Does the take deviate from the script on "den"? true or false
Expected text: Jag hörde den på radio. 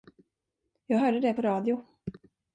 true